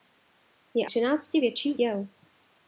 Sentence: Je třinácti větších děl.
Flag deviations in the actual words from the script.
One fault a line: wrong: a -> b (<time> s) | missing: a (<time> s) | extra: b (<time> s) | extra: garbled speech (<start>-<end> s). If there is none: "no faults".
no faults